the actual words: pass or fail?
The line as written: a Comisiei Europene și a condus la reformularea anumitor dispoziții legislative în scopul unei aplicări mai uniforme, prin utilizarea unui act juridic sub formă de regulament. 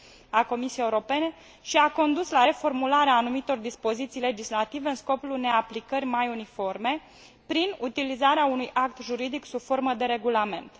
pass